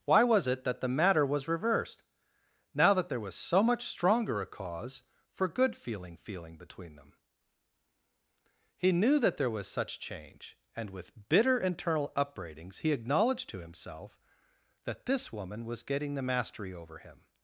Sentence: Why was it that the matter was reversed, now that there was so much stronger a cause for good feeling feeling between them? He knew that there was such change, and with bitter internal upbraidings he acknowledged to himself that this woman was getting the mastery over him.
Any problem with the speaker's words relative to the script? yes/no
no